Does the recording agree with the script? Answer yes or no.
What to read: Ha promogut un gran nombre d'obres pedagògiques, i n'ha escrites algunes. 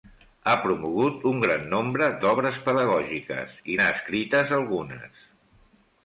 yes